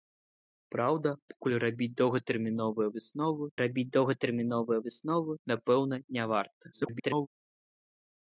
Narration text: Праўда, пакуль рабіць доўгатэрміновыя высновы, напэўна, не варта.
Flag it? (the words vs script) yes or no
yes